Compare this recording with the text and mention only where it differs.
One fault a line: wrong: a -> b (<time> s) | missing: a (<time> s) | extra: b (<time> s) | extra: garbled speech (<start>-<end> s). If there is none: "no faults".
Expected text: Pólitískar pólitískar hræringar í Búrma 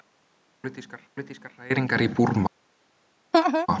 no faults